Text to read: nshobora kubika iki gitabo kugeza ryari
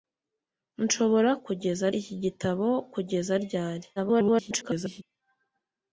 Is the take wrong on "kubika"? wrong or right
wrong